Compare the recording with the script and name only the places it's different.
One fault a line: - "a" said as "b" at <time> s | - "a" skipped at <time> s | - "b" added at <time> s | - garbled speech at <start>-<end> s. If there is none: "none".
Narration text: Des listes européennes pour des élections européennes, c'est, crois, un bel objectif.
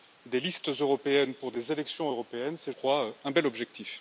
none